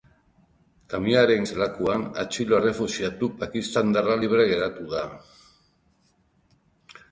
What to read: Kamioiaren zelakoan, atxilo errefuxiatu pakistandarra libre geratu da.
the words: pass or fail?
pass